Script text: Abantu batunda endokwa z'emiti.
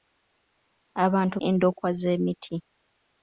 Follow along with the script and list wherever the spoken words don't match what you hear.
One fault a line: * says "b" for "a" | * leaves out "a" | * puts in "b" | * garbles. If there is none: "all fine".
* leaves out "batunda"